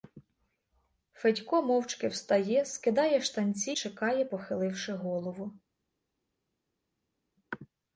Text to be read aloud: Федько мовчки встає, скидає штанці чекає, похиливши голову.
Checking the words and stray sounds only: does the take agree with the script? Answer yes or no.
yes